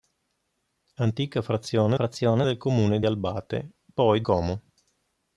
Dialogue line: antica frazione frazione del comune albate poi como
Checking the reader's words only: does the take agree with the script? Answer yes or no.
yes